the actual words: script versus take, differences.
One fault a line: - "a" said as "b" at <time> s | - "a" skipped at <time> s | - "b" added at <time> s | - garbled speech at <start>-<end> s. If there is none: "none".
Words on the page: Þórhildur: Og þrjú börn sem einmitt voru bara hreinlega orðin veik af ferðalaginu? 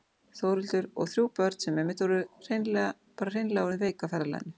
none